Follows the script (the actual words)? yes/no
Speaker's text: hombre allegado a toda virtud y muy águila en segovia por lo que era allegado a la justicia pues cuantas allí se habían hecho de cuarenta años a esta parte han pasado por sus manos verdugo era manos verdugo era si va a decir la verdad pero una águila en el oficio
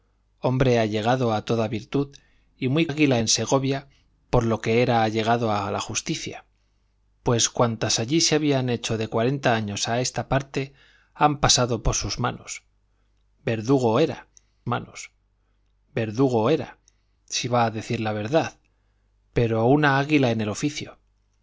yes